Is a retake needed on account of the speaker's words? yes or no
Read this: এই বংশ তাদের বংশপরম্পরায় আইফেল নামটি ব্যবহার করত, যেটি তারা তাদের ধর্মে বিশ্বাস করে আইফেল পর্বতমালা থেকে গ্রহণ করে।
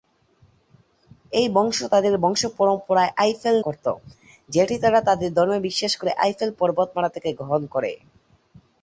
yes